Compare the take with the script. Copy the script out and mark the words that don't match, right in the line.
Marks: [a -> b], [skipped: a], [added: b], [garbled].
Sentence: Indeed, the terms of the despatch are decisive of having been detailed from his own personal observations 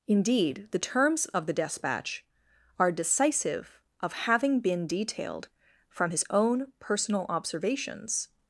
Indeed, the terms of the despatch are decisive of having been detailed from his own personal observations